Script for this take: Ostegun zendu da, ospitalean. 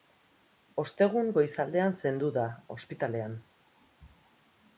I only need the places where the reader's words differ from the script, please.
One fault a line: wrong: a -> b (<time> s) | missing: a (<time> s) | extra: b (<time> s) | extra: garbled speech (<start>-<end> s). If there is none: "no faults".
extra: goizaldean (1.4 s)